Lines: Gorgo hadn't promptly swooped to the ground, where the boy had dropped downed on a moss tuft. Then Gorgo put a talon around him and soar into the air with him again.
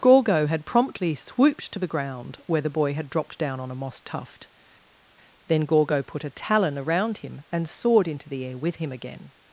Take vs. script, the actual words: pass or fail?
fail